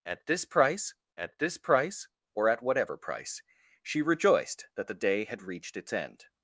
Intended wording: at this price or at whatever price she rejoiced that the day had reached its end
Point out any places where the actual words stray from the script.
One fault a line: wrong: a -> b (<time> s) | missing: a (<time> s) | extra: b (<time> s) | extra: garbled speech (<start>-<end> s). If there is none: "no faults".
extra: at this price (1.2 s)